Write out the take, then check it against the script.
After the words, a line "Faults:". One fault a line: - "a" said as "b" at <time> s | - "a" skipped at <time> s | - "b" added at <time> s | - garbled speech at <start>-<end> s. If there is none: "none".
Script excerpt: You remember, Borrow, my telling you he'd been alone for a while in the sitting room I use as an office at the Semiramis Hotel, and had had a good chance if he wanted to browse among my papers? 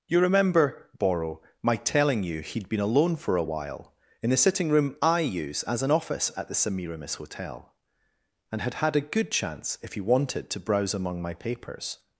You remember, Borrow, my telling you he'd been alone for a while in the sitting room I use as an office at the Semiramis Hotel, and had had a good chance if he wanted to browse among my papers?
Faults:
none